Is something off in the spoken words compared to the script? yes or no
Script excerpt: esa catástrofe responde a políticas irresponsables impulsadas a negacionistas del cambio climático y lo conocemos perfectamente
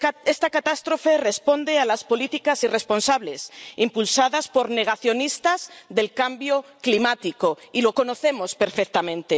yes